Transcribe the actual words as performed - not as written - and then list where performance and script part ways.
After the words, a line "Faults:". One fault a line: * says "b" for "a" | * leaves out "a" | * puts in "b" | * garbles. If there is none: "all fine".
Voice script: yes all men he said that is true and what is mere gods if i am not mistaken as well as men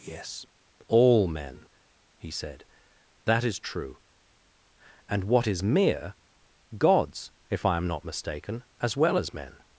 yes all men he said that is true and what is mere gods if i am not mistaken as well as men
Faults:
all fine